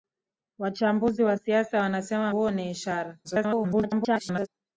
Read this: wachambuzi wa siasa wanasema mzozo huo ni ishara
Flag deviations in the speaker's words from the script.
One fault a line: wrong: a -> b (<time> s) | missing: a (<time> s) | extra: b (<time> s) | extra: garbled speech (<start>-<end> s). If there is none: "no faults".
missing: mzozo (2.3 s)
extra: garbled speech (3.2-4.5 s)